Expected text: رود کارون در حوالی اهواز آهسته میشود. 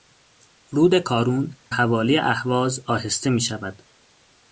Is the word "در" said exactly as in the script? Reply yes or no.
no